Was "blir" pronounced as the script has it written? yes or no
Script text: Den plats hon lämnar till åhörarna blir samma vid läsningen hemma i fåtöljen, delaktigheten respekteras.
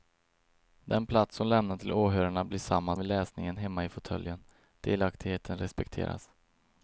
yes